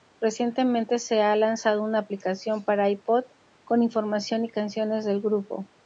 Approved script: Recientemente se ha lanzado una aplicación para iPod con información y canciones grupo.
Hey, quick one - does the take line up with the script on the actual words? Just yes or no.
no